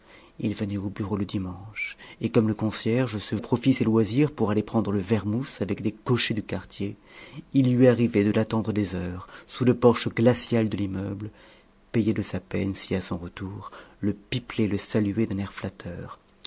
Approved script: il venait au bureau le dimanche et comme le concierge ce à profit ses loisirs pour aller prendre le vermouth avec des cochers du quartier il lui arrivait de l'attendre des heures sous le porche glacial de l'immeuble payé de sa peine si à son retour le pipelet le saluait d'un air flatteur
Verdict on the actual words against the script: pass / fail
pass